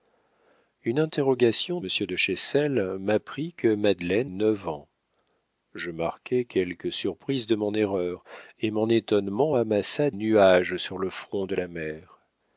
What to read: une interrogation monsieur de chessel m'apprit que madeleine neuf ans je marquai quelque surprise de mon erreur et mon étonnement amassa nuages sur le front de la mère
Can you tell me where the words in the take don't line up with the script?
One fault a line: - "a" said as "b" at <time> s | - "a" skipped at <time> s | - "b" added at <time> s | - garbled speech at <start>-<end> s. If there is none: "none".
none